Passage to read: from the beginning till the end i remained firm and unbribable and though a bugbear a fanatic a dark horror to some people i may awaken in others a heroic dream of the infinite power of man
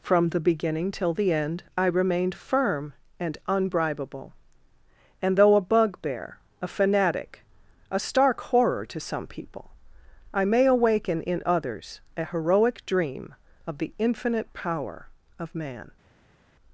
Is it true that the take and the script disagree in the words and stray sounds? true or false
true